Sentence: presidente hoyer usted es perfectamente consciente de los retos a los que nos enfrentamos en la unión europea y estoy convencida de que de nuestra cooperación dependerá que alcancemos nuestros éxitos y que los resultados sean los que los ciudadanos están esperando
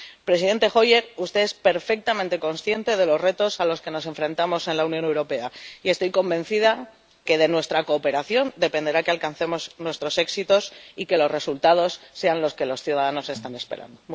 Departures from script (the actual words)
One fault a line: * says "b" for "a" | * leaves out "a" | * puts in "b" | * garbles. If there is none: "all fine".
* leaves out "de"